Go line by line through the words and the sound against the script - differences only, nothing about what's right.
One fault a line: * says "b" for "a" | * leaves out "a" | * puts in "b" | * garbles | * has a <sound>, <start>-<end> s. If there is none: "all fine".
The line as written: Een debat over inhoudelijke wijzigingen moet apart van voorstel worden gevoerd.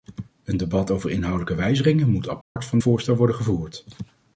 * has a dropout, 2.4-2.6 s